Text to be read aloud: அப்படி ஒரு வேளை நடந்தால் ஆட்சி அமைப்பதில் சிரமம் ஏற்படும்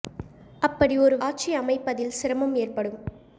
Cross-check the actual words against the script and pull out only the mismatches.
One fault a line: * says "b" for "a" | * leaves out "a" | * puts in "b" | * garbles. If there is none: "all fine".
* leaves out "வேளை நடந்தால்"